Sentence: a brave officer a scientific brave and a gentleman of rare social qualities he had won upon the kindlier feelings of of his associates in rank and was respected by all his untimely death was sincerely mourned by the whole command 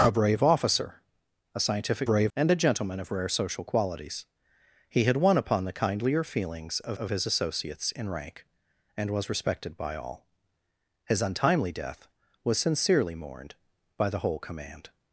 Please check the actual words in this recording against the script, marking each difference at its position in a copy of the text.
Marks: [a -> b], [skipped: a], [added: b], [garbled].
a brave officer a scientific brave and a gentleman of rare social qualities he had won upon the kindlier feelings of of his associates in rank and was respected by all his untimely death was sincerely mourned by the whole command